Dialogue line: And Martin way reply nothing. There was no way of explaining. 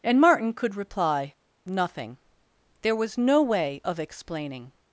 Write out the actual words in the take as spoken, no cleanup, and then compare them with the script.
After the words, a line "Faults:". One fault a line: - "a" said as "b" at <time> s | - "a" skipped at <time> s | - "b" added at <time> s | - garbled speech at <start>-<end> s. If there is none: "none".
And Martin could reply nothing. There was no way of explaining.
Faults:
- "way" said as "could" at 0.5 s